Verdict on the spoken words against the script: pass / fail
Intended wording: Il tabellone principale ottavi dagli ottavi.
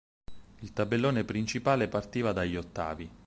fail